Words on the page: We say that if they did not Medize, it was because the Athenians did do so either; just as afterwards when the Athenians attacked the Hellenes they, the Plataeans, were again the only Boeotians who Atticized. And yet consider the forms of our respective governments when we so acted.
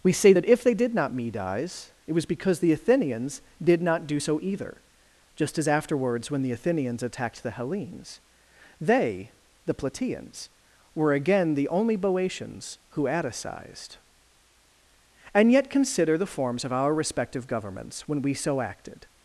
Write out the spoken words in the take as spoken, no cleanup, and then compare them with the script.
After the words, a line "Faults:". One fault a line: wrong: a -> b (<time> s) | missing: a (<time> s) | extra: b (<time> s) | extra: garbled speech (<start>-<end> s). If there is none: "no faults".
We say that if they did not Medize, it was because the Athenians did not do so either; just as afterwards when the Athenians attacked the Hellenes they, the Plataeans, were again the only Boeotians who Atticized. And yet consider the forms of our respective governments when we so acted.
Faults:
extra: not (3.8 s)